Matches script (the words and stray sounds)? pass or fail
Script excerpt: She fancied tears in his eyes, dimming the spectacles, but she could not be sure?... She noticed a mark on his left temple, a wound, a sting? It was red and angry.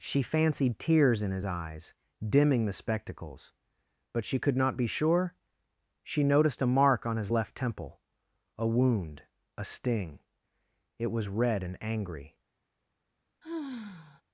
fail